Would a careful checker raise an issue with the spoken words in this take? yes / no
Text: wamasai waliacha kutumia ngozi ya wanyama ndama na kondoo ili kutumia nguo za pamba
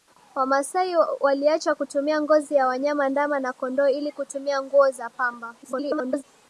yes